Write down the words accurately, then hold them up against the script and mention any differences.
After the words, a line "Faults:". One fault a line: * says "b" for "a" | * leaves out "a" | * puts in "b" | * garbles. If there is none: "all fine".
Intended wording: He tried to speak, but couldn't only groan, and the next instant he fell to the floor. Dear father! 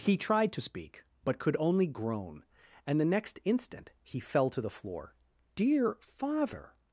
He tried to speak, but could only groan, and the next instant he fell to the floor. Dear father!
Faults:
* says "could" for "couldn't"